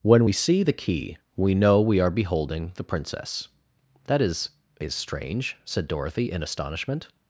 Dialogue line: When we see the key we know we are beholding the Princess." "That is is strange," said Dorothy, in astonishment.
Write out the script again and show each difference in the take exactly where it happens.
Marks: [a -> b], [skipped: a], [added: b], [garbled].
When we see the key we know we are beholding the Princess." "That is is strange," said Dorothy, in astonishment.